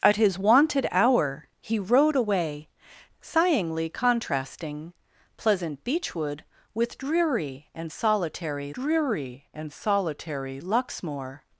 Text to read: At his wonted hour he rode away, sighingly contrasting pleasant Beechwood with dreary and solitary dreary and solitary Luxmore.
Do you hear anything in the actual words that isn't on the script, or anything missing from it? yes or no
no